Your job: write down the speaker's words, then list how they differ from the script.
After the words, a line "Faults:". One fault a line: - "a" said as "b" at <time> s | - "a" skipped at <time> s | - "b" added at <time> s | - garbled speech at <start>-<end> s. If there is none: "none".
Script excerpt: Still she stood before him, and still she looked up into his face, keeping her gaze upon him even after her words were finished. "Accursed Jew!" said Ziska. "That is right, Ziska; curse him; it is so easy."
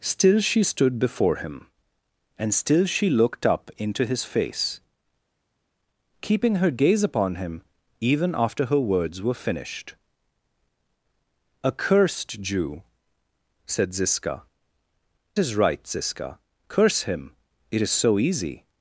Still she stood before him, and still she looked up into his face, keeping her gaze upon him even after her words were finished. "Accursed Jew!" said Ziska. "Is right, Ziska; curse him; it is so easy."
Faults:
- "That" skipped at 14.4 s